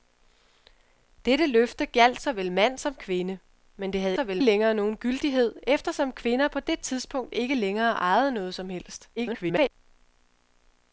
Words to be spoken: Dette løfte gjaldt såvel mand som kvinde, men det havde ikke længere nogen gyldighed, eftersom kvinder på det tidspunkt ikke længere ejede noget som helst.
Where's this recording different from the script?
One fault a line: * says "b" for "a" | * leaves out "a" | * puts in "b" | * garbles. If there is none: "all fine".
* says "såvel" for "ikke"
* garbles